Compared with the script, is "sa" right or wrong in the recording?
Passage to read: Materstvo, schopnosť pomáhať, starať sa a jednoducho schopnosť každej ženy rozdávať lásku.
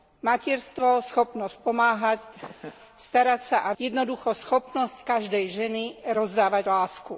right